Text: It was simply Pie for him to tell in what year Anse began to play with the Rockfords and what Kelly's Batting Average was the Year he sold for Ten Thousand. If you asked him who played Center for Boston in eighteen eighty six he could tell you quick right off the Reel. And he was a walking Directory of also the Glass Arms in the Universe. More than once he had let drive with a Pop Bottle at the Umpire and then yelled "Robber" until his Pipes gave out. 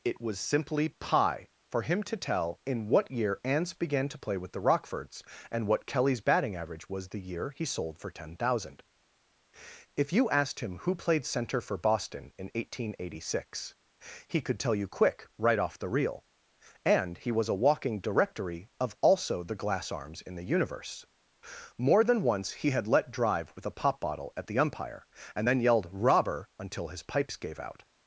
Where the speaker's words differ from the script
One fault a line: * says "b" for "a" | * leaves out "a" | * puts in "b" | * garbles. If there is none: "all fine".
all fine